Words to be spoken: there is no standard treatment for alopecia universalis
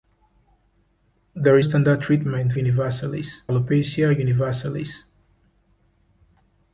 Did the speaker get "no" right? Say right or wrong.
wrong